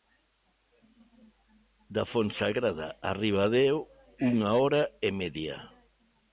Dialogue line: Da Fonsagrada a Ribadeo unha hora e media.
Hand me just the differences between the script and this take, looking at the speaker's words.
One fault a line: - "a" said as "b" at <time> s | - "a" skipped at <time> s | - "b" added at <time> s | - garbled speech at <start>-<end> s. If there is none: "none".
none